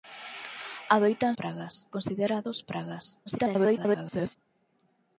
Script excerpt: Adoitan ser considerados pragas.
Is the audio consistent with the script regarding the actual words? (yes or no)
no